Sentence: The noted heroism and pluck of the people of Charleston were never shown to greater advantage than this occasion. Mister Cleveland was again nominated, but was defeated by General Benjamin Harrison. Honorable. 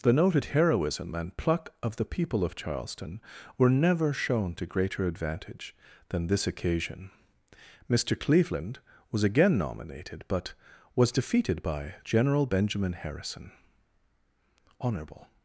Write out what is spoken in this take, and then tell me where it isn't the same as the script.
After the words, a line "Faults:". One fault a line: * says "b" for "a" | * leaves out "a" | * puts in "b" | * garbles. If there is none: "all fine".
The noted heroism and pluck of the people of Charleston were never shown to greater advantage than this occasion. Mister Cleveland was again nominated, but was defeated by General Benjamin Harrison. Honorable.
Faults:
all fine